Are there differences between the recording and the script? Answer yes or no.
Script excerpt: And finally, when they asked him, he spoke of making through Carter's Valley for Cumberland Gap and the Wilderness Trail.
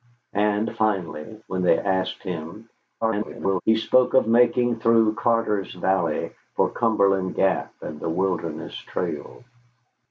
yes